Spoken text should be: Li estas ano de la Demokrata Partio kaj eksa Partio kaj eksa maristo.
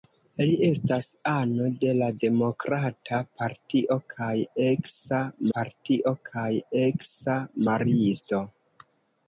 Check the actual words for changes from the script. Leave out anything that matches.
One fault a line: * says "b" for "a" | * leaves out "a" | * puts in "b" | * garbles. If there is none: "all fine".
all fine